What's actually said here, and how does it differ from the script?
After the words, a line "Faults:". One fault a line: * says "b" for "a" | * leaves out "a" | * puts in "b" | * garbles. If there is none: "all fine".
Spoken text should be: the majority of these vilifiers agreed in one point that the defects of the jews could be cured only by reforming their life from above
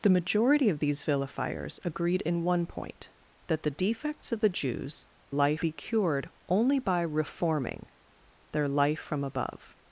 the majority of these vilifiers agreed in one point that the defects of the jews life be cured only by reforming their life from above
Faults:
* says "life" for "could"